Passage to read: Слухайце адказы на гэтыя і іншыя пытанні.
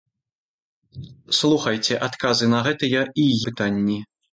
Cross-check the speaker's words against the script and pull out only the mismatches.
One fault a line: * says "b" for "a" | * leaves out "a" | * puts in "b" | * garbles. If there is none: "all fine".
* leaves out "іншыя"